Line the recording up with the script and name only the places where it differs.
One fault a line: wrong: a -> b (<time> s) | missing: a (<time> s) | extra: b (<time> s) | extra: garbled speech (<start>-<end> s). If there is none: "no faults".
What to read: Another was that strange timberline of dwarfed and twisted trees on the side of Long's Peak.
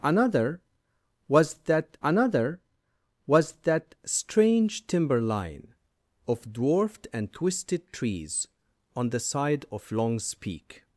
extra: another was that (2.0 s)